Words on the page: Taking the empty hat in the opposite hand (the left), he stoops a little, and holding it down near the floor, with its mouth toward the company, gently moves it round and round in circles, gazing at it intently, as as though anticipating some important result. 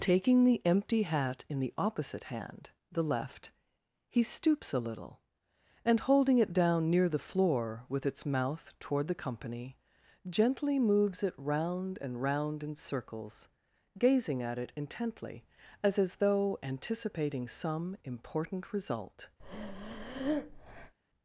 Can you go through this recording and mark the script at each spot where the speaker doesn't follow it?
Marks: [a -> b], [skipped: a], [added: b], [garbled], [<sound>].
Taking the empty hat in the opposite hand (the left), he stoops a little, and holding it down near the floor, with its mouth toward the company, gently moves it round and round in circles, gazing at it intently, as as though anticipating some important result. [breath]